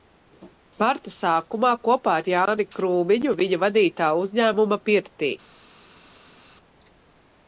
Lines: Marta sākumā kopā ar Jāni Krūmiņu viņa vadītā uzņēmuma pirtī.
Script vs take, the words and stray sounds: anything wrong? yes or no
no